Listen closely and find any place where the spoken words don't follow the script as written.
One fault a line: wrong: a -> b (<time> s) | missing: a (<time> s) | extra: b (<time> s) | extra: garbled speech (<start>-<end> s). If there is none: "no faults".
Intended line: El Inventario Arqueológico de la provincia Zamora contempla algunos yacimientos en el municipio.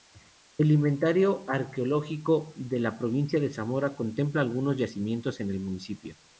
extra: de (3.4 s)